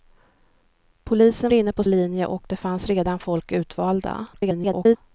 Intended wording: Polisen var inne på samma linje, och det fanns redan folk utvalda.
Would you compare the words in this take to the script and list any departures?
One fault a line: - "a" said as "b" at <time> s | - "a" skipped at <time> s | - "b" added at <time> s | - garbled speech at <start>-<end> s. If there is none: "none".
- "var" skipped at 1.5 s
- "samma" skipped at 1.8 s
- garbled speech at 4.3-5.0 s